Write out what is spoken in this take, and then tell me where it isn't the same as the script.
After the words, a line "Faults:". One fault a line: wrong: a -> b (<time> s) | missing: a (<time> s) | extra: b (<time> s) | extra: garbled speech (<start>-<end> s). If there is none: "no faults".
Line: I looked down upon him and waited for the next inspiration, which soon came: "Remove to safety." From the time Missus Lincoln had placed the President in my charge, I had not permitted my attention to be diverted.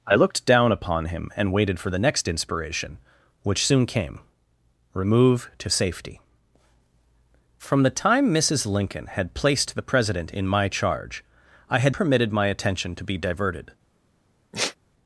I looked down upon him and waited for the next inspiration, which soon came: "Remove to safety." From the time Missus Lincoln had placed the President in my charge, I had permitted my attention to be diverted.
Faults:
missing: not (11.9 s)